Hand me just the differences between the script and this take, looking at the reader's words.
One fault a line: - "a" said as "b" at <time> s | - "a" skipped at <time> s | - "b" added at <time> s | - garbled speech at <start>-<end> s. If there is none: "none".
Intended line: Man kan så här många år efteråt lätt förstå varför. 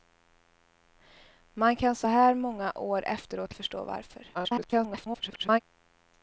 - "lätt" skipped at 3.5 s
- garbled speech at 4.3-5.6 s